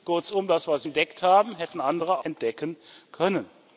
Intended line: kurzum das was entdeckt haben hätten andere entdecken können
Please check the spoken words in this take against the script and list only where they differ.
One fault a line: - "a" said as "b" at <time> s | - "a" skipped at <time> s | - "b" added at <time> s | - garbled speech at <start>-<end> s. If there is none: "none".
none